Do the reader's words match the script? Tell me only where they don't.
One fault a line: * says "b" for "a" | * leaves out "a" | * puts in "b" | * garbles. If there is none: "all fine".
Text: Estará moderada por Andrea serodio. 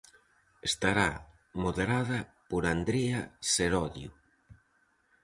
all fine